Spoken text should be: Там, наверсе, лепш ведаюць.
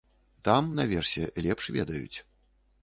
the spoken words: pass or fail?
pass